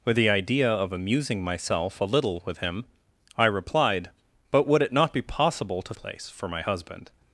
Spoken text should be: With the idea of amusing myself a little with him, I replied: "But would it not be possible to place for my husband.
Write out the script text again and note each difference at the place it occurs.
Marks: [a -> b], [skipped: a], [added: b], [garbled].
With the idea of amusing myself a little with him, I replied: "But would it not be possible to place for my husband.